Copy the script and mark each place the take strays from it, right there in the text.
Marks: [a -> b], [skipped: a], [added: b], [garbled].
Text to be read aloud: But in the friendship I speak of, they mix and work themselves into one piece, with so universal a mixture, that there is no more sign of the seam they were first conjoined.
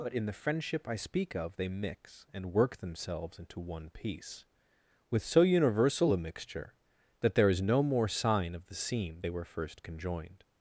But in the friendship I speak of, they mix and work themselves into one piece, with so universal a mixture, that there is no more sign of the seam they were first conjoined.